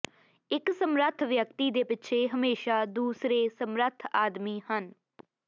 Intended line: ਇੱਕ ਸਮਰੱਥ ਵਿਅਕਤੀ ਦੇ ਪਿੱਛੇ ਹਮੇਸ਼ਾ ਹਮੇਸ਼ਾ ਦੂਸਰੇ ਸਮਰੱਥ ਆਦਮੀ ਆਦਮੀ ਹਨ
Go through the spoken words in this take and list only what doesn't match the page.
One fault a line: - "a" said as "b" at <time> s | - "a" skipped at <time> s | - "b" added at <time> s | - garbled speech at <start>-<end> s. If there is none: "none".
- "ਹਮੇਸ਼ਾ" skipped at 2.8 s
- "ਆਦਮੀ" skipped at 4.6 s